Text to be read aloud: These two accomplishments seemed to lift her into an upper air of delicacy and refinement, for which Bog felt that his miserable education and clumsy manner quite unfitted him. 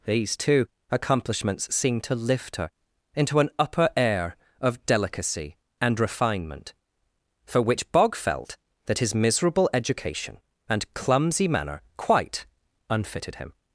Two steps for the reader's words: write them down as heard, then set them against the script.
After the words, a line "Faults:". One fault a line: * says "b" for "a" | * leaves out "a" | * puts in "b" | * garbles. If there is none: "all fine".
These two accomplishments seemed to lift her into an upper air of delicacy and refinement, for which Bog felt that his miserable education and clumsy manner quite unfitted him.
Faults:
all fine